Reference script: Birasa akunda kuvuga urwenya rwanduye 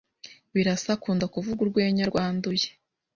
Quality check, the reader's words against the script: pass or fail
pass